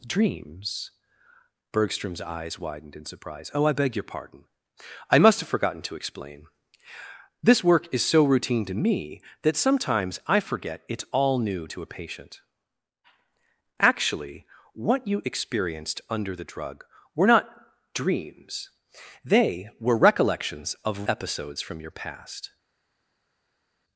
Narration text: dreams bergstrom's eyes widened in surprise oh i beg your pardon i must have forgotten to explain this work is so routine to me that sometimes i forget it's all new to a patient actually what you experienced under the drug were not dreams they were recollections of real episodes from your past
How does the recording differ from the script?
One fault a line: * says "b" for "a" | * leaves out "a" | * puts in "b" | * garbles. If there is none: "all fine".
* leaves out "real"